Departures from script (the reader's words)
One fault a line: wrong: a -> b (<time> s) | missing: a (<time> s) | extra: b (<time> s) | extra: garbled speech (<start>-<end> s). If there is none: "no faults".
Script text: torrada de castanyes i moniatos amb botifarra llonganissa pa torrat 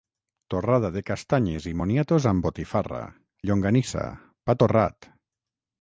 no faults